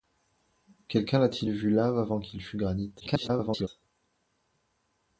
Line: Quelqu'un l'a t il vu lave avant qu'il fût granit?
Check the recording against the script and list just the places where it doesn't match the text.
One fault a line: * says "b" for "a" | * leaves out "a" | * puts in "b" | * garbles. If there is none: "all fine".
* garbles